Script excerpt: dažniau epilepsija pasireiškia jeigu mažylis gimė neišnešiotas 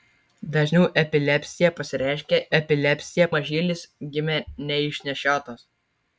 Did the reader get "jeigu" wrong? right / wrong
wrong